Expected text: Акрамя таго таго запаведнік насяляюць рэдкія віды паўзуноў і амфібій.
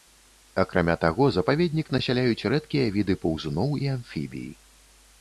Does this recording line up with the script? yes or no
no